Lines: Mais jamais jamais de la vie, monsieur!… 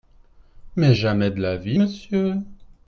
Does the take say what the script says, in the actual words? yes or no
no